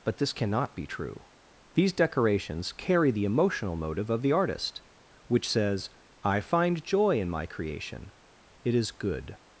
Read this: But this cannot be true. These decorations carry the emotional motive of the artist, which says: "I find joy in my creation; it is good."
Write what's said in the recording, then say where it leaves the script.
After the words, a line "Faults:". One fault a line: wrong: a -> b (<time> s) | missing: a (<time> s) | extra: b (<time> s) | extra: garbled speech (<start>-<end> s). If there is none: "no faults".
But this cannot be true. These decorations carry the emotional motive of the artist, which says: "I find joy in my creation; it is good."
Faults:
no faults